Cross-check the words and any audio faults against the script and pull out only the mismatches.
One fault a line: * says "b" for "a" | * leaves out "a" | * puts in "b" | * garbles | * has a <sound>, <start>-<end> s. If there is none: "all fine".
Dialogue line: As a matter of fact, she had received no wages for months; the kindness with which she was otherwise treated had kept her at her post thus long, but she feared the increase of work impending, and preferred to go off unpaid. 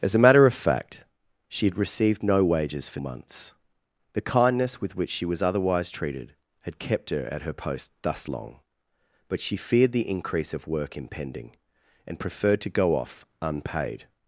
all fine